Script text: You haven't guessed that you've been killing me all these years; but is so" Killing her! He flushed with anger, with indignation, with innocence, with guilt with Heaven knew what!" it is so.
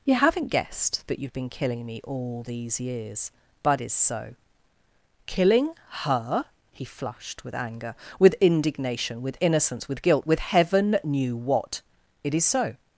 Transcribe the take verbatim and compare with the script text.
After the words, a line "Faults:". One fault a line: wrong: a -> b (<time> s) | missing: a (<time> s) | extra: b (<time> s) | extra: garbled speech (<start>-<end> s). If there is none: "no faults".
You haven't guessed that you've been killing me all these years; but is so" Killing her! He flushed with anger, with indignation, with innocence, with guilt with Heaven knew what!" it is so.
Faults:
no faults